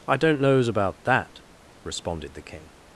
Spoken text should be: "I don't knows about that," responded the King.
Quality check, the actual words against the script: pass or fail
pass